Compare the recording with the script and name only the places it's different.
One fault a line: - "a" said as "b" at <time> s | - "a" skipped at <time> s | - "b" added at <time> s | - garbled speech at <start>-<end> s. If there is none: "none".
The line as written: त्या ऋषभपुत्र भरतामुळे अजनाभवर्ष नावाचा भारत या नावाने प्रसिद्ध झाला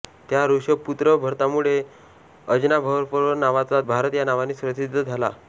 none